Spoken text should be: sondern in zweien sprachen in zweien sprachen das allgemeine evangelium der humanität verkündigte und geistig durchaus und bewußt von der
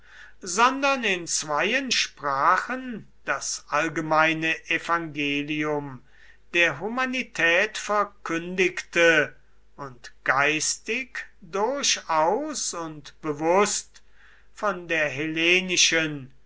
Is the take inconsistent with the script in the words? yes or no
yes